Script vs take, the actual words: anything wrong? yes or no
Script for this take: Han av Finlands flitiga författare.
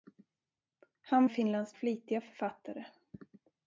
no